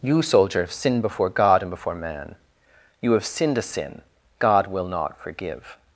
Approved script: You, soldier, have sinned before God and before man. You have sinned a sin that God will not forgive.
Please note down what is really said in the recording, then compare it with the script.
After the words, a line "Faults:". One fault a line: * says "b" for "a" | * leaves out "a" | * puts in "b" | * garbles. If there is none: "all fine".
You, soldier, have sinned before God and before man. You have sinned a sin God will not forgive.
Faults:
* leaves out "that"